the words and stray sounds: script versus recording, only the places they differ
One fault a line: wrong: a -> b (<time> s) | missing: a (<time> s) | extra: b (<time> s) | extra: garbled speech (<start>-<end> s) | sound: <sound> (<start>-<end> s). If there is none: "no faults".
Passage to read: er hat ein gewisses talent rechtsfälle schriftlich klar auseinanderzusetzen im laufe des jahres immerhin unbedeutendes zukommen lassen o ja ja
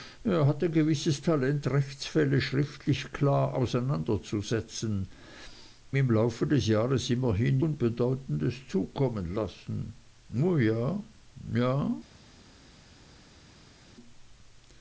no faults